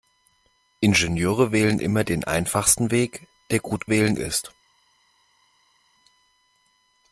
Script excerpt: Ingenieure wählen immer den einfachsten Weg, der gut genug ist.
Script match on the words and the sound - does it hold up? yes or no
no